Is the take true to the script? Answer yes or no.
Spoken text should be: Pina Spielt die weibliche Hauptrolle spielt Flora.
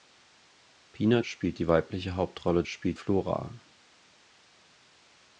yes